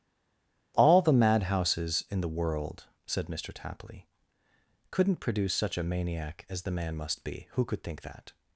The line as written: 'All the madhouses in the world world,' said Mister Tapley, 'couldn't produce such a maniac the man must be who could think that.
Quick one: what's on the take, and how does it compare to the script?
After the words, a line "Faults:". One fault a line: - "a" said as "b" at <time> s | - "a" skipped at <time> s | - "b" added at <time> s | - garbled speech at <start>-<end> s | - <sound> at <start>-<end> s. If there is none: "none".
'All the madhouses in the world,' said Mister Tapley, 'couldn't produce such a maniac as the man must be who could think that.
Faults:
- "world" skipped at 2.8 s
- "as" added at 6.5 s